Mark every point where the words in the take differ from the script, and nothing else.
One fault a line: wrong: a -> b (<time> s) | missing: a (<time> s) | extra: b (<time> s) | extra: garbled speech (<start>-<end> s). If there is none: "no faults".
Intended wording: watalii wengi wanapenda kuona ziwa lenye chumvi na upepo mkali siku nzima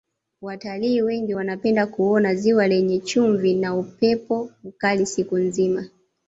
no faults